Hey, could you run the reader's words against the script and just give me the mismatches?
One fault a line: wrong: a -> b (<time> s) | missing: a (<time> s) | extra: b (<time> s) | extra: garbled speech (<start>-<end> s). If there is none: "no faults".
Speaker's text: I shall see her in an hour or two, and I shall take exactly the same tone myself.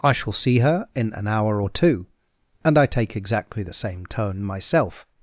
missing: shall (2.8 s)